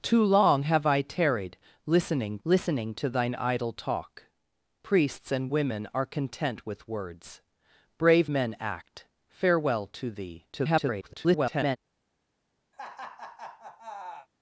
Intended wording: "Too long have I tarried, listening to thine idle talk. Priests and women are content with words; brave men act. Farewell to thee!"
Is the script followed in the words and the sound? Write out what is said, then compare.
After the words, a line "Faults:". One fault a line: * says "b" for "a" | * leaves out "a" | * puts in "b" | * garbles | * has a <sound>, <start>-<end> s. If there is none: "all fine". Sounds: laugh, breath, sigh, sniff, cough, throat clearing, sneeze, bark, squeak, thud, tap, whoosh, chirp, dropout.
"Too long have I tarried, listening listening to thine idle talk. Priests and women are content with words; brave men act. Farewell to thee!" [garbled]
Faults:
* puts in "listening"
* garbles
* has a laugh, 12.7-14.3 s